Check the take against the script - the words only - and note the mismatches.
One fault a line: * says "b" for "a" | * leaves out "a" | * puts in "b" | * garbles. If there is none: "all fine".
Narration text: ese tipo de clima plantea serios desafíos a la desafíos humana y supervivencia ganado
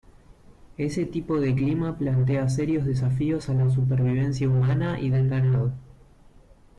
* says "supervivencia" for "desafíos"
* says "del" for "supervivencia"